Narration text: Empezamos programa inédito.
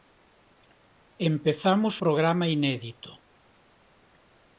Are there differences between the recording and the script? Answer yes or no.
no